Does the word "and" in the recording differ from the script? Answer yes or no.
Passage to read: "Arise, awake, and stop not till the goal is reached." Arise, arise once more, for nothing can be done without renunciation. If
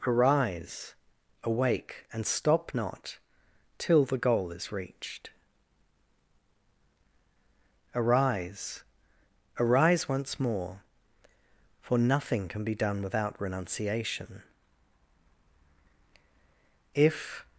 no